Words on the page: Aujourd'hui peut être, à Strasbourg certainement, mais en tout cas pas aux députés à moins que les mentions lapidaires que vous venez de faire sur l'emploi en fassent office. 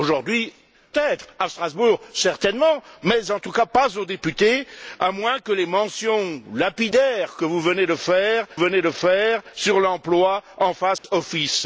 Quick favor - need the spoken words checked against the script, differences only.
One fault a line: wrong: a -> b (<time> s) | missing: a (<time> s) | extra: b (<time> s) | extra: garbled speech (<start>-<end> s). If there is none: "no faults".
missing: peut (0.5 s)
extra: venez de faire (8.5 s)